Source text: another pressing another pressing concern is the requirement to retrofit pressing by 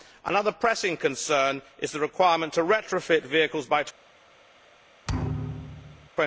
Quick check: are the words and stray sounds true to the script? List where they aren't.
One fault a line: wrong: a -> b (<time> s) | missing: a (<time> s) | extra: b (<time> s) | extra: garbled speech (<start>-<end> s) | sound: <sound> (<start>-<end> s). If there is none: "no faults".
missing: another pressing (1.0 s)
wrong: pressing -> vehicles (3.2 s)
sound: thud (5.1-6.1 s)